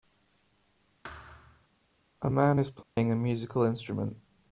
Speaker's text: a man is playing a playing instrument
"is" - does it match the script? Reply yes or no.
yes